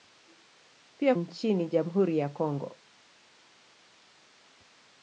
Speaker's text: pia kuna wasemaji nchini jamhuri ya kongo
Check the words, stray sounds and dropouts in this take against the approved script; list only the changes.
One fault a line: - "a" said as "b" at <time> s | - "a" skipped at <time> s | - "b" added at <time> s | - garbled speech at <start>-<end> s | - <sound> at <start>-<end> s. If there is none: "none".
- "kuna wasemaji" skipped at 1.1 s